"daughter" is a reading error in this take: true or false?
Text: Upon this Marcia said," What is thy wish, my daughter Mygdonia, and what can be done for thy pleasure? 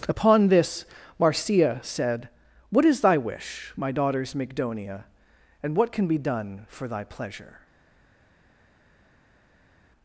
true